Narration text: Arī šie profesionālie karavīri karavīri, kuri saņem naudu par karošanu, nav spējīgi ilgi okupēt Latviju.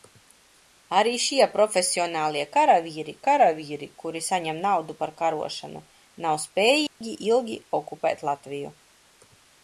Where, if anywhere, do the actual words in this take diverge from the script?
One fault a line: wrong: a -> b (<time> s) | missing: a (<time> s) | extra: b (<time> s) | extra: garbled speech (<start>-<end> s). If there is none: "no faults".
no faults